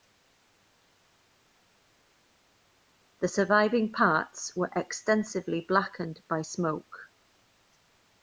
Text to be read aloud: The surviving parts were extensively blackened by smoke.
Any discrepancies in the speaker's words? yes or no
no